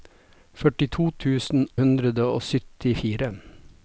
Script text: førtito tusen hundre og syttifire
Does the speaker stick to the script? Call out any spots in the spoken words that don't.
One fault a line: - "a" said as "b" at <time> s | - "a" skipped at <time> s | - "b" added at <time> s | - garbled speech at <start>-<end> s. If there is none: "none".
none